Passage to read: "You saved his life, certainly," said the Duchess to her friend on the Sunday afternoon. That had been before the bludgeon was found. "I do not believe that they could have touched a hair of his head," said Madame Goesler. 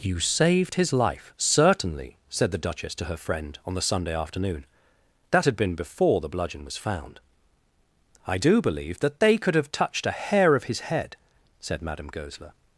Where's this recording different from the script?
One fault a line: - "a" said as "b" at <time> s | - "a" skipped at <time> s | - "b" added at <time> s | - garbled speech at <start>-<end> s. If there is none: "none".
- "not" skipped at 8.6 s